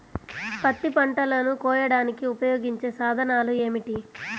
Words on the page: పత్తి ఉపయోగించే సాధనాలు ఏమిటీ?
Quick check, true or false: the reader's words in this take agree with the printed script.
false